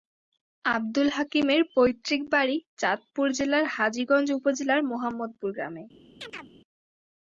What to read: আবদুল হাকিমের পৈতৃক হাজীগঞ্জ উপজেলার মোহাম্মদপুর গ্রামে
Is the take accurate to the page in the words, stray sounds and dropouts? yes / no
no